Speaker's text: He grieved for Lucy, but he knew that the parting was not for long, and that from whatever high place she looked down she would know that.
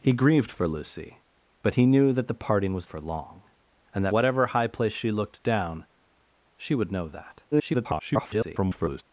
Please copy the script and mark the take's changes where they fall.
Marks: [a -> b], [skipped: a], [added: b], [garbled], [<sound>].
He grieved for Lucy, but he knew that the parting was [skipped: not] for long, and that [skipped: from] whatever high place she looked down she would know that. [garbled]